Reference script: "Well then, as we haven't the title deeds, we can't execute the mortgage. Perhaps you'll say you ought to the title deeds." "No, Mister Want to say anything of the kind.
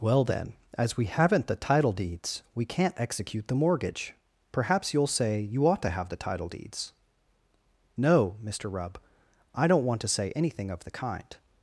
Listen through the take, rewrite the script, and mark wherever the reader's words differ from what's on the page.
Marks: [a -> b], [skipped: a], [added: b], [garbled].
"Well then, as we haven't the title deeds, we can't execute the mortgage. Perhaps you'll say you ought to [added: have] the title deeds." "No, Mister [added: Rubb I don't] Want to say anything of the kind.